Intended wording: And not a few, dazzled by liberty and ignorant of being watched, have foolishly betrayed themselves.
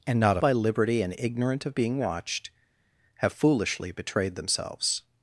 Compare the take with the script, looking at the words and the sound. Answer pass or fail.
fail